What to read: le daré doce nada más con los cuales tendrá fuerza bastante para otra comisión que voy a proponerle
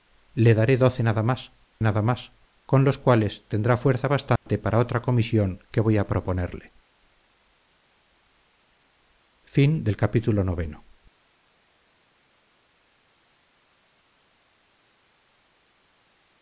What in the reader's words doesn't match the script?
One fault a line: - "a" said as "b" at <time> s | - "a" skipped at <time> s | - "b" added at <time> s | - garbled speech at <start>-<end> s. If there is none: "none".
- "nada más" added at 1.8 s